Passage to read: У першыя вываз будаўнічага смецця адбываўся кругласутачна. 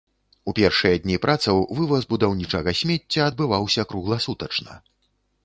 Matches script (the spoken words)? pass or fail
fail